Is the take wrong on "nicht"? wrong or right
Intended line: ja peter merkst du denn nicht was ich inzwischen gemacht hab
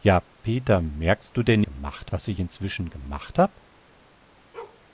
wrong